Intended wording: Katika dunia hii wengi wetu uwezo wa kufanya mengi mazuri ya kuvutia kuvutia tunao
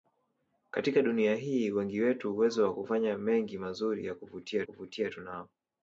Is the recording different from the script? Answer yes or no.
no